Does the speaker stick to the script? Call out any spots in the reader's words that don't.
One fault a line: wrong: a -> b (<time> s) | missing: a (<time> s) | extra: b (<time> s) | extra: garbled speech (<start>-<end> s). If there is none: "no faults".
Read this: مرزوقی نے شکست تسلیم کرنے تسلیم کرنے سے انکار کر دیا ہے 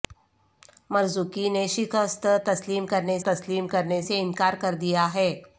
no faults